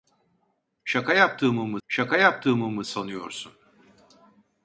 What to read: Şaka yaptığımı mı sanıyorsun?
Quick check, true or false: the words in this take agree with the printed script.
false